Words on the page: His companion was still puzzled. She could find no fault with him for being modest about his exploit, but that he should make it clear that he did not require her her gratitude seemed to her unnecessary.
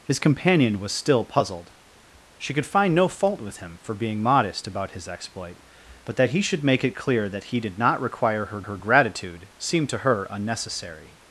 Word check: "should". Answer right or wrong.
right